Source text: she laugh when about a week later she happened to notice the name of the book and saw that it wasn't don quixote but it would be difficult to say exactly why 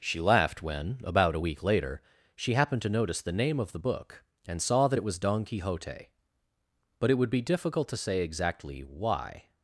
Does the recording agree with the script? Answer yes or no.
no